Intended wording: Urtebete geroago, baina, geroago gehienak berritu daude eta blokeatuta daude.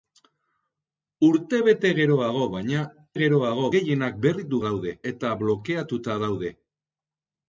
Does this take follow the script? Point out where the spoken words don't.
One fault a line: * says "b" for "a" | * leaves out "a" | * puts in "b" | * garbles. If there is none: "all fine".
all fine